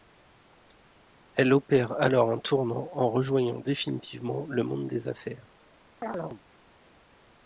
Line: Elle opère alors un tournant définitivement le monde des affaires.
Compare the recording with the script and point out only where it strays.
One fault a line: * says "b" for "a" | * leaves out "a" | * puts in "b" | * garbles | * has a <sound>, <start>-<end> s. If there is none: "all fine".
* puts in "en rejoignant"
* has a chirp, 6.0-6.4 s